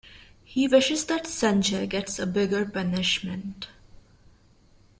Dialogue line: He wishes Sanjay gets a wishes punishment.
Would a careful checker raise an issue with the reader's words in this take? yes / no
yes